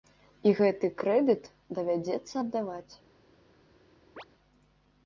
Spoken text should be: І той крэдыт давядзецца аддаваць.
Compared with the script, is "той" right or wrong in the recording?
wrong